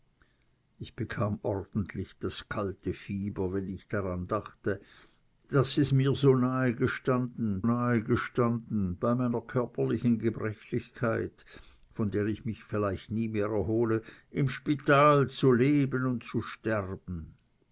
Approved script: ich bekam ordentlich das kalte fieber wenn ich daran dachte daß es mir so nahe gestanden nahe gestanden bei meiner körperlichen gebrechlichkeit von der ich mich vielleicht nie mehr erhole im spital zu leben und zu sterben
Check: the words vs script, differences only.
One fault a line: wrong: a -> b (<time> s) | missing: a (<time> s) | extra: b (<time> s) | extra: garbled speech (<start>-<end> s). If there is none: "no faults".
no faults